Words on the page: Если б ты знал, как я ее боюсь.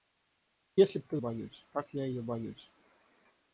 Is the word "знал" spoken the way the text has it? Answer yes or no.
no